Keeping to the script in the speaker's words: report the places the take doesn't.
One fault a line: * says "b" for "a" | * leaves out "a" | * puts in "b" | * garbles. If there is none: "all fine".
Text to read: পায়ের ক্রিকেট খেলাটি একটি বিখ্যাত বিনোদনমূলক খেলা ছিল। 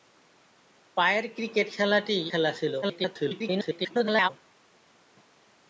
* leaves out "একটি বিখ্যাত বিনোদনমূলক"
* garbles